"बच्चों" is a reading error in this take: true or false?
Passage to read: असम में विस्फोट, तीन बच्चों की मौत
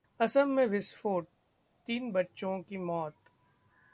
false